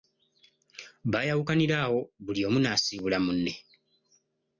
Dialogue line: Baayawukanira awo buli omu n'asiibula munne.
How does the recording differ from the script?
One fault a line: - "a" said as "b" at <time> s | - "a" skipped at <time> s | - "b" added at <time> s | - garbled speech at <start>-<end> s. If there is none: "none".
none